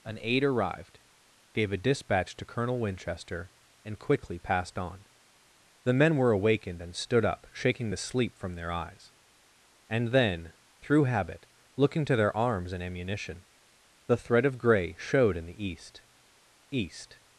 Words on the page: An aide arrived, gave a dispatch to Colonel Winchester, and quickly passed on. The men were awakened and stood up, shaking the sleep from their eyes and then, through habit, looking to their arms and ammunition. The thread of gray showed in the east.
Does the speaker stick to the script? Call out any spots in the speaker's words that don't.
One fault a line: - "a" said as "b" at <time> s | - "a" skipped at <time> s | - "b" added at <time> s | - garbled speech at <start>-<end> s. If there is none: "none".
- "east" added at 16.7 s